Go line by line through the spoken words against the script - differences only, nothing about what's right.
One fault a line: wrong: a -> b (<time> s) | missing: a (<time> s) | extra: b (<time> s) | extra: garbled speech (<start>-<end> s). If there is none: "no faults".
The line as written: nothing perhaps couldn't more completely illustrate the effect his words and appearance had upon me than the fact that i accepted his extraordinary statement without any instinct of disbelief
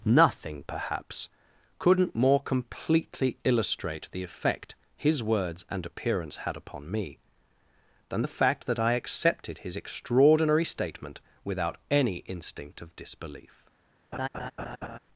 no faults